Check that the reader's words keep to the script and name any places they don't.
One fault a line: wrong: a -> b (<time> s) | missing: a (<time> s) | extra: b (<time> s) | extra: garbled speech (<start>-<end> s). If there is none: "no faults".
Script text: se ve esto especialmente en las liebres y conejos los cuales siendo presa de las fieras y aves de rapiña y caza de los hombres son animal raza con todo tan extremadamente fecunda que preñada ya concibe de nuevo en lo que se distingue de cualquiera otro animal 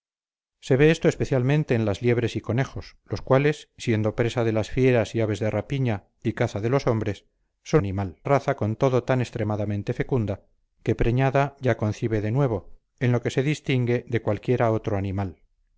no faults